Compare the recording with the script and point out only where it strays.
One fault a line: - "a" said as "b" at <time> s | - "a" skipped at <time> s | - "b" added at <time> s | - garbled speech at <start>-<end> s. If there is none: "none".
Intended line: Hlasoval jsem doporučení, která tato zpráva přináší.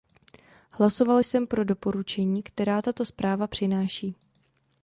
- "pro" added at 1.5 s